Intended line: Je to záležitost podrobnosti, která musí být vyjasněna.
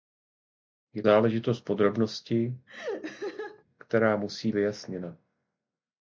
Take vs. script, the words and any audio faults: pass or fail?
fail